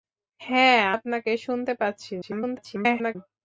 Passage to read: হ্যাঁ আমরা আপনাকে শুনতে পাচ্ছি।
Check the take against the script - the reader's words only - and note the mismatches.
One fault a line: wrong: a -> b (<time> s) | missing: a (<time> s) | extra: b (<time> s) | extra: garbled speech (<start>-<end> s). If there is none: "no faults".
missing: আমরা (0.8 s)
extra: garbled speech (2.2-3.2 s)